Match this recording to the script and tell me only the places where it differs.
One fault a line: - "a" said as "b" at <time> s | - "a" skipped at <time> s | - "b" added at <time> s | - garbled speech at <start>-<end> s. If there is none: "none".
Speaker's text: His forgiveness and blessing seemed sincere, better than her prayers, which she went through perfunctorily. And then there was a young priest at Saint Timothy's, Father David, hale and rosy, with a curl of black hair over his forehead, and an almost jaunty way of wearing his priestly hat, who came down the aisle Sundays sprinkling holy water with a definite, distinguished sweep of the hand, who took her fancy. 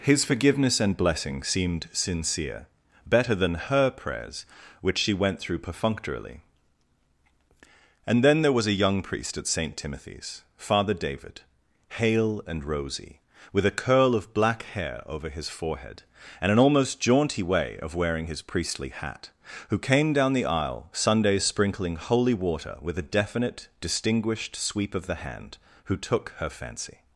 none